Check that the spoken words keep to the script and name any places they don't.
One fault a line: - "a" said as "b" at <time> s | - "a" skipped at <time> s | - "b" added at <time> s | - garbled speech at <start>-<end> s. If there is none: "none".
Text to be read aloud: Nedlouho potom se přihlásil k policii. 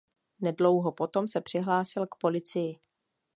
none